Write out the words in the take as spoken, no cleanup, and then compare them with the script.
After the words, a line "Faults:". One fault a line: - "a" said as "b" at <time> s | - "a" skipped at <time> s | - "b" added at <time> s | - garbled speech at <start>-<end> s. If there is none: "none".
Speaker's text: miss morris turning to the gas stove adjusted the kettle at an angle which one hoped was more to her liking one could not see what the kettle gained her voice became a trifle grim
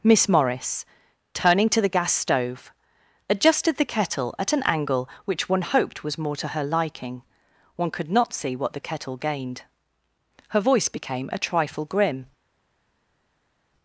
miss morris turning to the gas stove adjusted the kettle at an angle which one hoped was more to her liking one could not see what the kettle gained her voice became a trifle grim
Faults:
none